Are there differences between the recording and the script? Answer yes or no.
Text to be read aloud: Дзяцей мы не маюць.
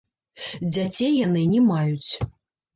yes